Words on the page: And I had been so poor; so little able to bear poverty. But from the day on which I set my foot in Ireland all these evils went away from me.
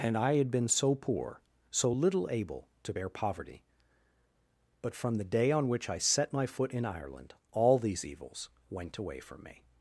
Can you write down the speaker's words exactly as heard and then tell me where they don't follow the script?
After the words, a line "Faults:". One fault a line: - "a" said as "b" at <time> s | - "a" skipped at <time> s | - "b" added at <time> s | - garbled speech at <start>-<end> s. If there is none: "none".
And I had been so poor; so little able to bear poverty. But from the day on which I set my foot in Ireland all these evils went away from me.
Faults:
none